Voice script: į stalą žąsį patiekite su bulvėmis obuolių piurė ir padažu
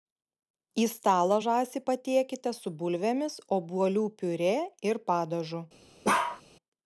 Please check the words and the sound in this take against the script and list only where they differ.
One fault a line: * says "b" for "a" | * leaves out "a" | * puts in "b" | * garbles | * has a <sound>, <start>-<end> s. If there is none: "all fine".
* has a bark, 6.0-6.4 s